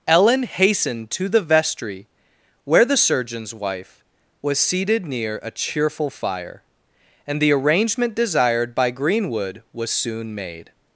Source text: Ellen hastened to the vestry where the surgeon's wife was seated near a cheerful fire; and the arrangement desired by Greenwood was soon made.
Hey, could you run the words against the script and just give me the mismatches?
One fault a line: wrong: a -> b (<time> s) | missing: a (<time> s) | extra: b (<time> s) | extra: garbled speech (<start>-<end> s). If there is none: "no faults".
no faults